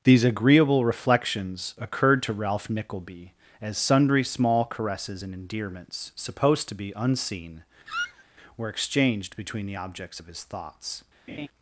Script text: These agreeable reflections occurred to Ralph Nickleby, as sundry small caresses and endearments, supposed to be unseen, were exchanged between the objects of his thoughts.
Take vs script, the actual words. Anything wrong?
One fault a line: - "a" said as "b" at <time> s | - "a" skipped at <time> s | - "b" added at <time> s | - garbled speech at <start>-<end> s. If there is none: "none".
none